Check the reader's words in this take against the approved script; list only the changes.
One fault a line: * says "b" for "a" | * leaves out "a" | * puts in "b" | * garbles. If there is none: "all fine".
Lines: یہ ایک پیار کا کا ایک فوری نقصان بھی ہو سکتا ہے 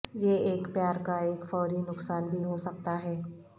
* leaves out "کا"